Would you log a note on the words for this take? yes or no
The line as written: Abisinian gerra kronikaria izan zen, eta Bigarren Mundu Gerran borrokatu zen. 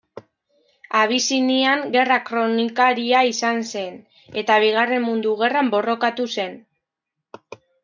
no